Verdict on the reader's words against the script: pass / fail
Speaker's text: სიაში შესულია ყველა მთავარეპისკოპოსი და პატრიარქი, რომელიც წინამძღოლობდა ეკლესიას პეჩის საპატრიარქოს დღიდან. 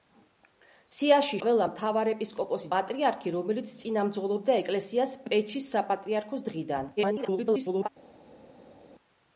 fail